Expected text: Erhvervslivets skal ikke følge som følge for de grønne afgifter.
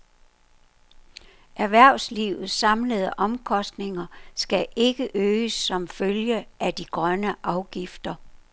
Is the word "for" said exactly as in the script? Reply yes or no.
no